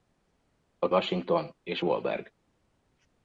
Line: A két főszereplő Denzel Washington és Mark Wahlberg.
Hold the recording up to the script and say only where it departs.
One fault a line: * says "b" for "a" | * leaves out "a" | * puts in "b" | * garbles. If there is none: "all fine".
* leaves out "két főszereplő Denzel"
* leaves out "Mark"